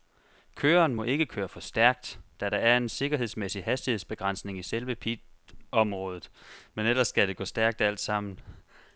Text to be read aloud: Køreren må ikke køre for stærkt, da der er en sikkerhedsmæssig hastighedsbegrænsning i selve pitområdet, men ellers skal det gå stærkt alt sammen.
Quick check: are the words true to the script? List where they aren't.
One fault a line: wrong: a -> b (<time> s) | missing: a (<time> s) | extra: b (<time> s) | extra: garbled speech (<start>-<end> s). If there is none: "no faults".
no faults